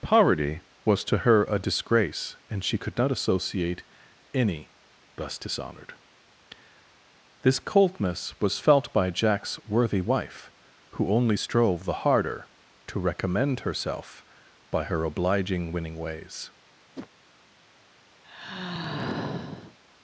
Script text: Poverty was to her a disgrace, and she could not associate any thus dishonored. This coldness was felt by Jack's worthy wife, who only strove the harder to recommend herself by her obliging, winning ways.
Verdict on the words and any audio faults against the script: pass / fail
fail